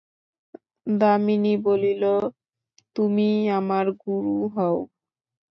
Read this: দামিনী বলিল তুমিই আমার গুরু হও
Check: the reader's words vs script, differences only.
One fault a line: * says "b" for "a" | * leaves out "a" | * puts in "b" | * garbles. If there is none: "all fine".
all fine